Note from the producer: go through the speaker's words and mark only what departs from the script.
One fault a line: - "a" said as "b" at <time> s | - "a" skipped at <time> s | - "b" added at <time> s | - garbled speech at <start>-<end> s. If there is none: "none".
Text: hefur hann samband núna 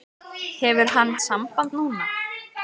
none